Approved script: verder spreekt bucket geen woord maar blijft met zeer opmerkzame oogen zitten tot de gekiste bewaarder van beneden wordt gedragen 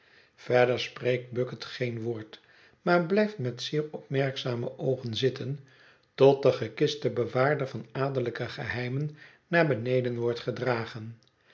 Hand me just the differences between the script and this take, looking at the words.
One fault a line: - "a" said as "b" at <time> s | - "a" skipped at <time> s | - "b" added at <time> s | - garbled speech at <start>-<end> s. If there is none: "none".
- "adellijke geheimen naar" added at 7.9 s